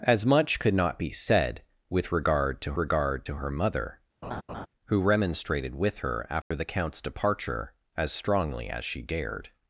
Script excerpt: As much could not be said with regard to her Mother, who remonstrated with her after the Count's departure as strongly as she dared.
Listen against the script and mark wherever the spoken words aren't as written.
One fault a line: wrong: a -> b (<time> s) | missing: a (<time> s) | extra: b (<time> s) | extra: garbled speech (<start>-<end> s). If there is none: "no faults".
extra: regard to (2.8 s)